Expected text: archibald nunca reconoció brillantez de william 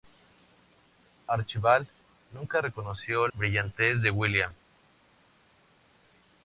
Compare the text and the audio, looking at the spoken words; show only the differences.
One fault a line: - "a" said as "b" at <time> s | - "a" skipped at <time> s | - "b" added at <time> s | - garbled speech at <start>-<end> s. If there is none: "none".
none